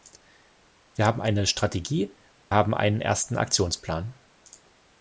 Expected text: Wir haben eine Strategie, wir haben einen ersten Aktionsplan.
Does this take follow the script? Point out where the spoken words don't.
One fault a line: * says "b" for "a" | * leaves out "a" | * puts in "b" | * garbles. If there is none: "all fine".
* leaves out "wir"